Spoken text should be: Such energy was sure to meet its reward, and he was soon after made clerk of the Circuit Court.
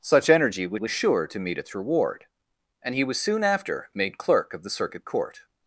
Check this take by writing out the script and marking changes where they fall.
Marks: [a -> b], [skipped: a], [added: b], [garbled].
Such energy was [added: was] sure to meet its reward, and he was soon after made clerk of the Circuit Court.